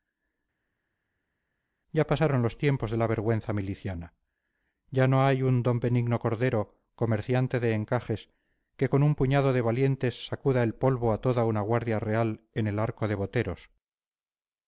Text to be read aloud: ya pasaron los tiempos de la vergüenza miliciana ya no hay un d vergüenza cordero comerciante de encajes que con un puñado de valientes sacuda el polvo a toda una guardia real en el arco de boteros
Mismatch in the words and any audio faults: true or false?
true